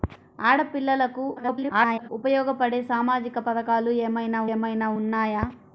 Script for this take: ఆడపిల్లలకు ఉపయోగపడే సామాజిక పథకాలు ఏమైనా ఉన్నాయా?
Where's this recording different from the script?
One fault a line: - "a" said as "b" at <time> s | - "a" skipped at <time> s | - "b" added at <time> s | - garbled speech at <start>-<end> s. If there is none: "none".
- garbled speech at 1.4-2.1 s
- "ఏమైనా" added at 4.5 s